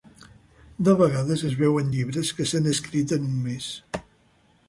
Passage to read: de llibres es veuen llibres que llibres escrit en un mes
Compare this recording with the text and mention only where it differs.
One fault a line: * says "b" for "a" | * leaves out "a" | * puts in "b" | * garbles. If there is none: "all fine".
* says "vegades" for "llibres"
* says "s'han" for "llibres"